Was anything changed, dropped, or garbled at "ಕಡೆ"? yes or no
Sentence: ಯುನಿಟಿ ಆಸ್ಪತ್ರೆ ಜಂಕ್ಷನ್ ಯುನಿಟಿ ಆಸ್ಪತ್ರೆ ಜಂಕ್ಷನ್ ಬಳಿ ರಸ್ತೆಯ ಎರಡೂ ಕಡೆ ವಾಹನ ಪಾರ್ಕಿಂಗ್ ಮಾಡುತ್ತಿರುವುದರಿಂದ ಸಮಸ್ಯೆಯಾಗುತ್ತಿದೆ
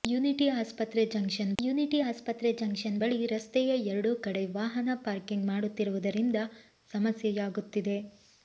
no